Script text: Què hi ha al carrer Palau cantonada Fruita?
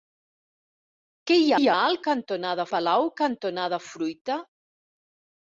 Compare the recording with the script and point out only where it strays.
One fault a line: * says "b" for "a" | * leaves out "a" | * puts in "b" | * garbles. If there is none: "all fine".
* puts in "hi"
* says "cantonada" for "carrer"